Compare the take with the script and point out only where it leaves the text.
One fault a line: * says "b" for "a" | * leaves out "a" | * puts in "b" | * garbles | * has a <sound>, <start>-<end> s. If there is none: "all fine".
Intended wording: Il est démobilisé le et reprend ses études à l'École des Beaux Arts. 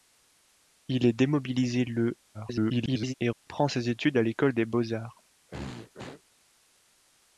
* garbles
* has a dropout, 3.3-3.5 s
* has a throat clearing, 5.5-6.2 s